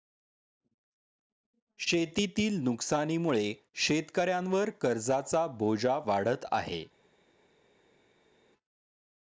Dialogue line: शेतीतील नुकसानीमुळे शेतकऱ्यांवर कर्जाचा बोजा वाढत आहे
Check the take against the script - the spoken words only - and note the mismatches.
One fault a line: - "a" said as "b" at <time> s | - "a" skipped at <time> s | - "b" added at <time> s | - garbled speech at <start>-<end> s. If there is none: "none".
none